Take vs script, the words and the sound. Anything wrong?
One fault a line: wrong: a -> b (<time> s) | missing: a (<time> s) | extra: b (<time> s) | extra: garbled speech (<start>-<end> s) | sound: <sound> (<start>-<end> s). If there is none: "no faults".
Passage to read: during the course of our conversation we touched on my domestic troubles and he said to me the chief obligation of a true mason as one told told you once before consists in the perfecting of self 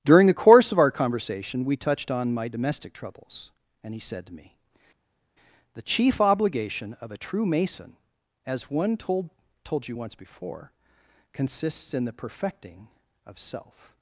no faults